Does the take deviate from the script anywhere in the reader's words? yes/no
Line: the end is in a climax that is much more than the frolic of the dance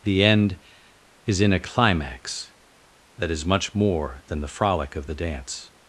no